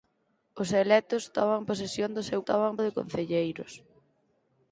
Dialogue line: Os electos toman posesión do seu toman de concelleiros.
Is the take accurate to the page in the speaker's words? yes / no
yes